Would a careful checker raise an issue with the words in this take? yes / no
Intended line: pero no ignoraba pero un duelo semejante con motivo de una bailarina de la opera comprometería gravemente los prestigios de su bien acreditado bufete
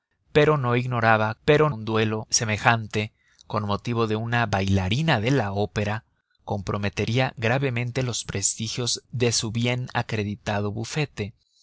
no